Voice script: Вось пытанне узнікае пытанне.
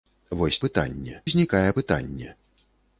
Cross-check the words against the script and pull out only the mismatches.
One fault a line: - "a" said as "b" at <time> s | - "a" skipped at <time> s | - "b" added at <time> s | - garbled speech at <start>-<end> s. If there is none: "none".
none